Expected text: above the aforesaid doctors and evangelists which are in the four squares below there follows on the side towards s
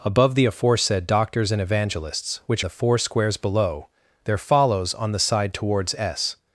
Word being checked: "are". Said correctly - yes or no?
no